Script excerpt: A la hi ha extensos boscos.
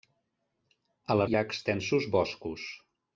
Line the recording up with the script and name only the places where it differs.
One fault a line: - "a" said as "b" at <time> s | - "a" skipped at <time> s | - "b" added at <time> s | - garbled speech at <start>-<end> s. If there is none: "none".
none